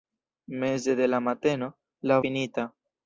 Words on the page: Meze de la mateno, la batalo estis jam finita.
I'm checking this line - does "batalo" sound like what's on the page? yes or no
no